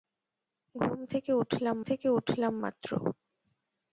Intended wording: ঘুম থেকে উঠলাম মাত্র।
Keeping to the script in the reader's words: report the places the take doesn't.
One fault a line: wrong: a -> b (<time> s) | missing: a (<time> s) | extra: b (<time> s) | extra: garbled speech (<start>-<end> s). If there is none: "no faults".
extra: থেকে উঠলাম (1.8 s)